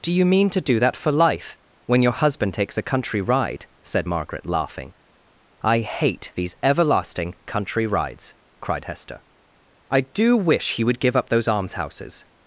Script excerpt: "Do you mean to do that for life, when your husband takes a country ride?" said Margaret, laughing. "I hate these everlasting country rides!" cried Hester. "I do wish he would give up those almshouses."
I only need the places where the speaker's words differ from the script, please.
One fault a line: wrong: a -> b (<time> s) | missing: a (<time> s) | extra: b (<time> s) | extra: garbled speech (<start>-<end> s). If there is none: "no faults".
no faults